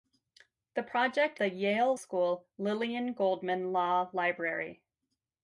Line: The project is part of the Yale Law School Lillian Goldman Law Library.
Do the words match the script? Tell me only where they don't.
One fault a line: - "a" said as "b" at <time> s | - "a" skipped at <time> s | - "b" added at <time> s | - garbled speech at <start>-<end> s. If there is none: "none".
- "is part of" skipped at 1.4 s
- "Law" skipped at 2.0 s